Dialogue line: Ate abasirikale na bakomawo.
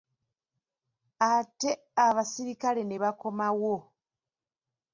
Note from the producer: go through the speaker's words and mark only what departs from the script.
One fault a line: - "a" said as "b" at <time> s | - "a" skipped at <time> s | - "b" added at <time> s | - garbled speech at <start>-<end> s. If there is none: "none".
- "na" said as "ne" at 2.9 s